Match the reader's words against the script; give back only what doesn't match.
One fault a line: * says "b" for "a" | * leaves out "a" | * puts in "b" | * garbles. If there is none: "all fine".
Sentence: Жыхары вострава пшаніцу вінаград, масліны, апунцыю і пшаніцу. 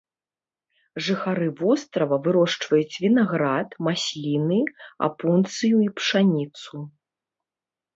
* says "вырошчваюць" for "пшаніцу"